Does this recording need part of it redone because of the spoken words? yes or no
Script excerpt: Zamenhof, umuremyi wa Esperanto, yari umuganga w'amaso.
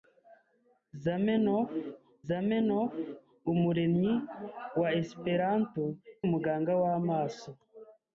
yes